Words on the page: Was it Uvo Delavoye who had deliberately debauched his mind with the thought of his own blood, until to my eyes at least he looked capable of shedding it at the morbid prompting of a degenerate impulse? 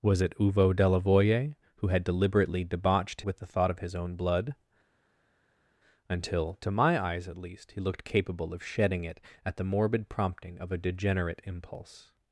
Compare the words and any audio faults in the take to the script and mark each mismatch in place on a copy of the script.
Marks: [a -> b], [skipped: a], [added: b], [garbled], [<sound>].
Was it Uvo Delavoye who had deliberately debauched [skipped: his mind] with the thought of his own blood, until to my eyes at least he looked capable of shedding it at the morbid prompting of a degenerate impulse?